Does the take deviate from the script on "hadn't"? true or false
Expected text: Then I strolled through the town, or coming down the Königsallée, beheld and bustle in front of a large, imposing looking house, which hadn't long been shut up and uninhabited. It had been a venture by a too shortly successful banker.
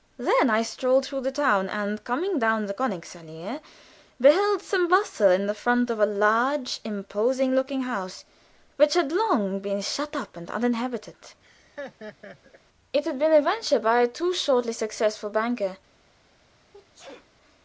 true